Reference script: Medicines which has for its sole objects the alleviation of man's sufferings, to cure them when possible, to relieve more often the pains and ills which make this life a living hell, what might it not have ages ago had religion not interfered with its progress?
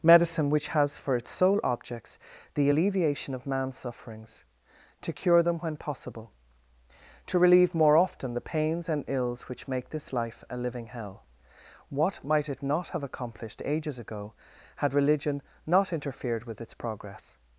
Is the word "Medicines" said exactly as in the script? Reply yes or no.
no